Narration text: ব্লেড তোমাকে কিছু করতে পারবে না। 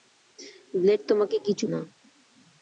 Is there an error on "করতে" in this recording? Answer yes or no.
yes